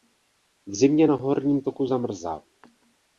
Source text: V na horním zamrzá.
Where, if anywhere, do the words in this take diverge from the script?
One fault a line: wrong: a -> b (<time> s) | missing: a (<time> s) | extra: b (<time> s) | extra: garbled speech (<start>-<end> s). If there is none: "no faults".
extra: zimě (0.7 s)
extra: toku (1.6 s)